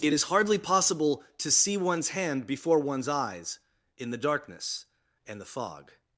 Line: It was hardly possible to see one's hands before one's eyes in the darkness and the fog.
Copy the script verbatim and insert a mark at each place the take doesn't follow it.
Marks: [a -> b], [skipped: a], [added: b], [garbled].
It [was -> is] hardly possible to see one's [hands -> hand] before one's eyes in the darkness and the fog.